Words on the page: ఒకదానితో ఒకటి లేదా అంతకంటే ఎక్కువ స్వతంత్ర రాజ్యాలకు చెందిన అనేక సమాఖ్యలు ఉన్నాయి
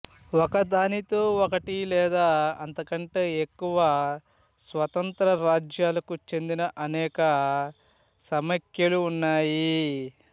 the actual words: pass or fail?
pass